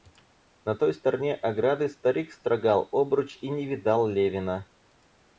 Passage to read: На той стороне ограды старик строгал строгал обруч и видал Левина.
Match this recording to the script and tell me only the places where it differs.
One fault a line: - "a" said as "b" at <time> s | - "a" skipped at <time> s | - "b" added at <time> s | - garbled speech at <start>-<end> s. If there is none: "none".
- "строгал" skipped at 2.9 s
- "не" added at 3.5 s